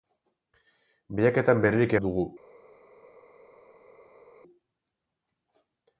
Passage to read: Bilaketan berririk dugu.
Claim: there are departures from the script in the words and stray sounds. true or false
false